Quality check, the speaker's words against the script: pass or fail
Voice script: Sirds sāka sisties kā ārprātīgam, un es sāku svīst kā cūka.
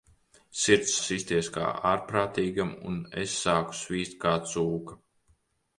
fail